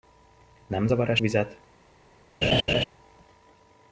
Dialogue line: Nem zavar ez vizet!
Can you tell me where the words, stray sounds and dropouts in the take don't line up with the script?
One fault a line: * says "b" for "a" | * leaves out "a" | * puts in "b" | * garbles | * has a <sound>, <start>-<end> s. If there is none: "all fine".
* has a laugh, 2.4-2.8 s